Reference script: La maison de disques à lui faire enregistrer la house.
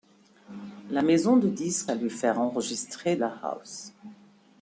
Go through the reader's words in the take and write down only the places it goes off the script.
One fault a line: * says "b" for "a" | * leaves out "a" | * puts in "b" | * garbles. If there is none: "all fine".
all fine